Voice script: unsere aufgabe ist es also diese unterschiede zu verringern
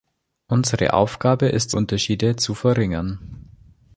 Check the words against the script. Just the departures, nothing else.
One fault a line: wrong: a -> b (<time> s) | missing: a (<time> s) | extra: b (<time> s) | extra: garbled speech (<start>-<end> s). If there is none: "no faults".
missing: es also diese (1.8 s)